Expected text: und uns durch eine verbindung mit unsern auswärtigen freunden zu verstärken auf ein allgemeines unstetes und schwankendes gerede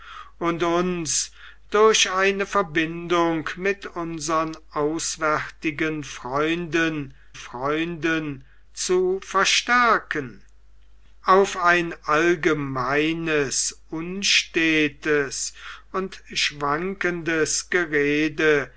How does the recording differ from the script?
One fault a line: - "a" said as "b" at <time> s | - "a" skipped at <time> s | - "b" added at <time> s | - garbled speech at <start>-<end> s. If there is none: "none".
- "freunden" added at 7.3 s